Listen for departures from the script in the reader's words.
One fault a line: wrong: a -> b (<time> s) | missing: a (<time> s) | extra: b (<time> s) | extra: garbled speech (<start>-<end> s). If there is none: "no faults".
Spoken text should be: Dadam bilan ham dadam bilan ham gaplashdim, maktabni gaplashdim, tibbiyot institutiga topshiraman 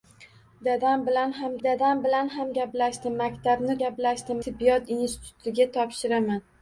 no faults